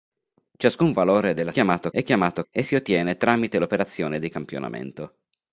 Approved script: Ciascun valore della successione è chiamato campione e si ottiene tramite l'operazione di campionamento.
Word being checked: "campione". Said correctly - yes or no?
no